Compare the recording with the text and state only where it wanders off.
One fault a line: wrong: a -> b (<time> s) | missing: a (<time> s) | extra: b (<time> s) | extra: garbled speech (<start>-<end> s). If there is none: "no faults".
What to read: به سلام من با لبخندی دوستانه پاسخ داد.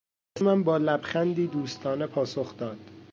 missing: سلام (0.4 s)